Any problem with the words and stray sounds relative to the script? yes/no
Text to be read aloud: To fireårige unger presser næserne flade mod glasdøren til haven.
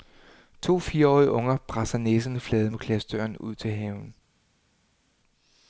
yes